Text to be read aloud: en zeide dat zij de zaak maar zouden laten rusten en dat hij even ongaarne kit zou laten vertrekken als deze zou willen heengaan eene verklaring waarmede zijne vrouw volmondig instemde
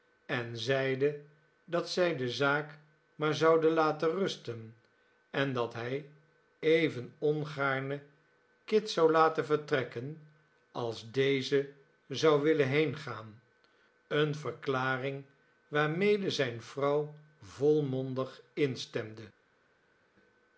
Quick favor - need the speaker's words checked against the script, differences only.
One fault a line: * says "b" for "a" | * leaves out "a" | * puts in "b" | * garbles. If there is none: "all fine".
all fine